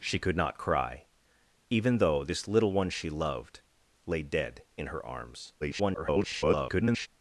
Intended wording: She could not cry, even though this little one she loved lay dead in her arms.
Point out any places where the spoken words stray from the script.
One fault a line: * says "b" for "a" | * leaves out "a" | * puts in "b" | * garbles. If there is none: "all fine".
* garbles